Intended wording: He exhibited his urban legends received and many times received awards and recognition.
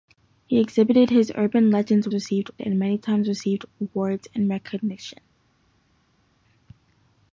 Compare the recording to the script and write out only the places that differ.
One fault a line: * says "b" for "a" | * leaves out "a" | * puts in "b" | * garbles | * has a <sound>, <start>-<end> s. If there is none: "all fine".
all fine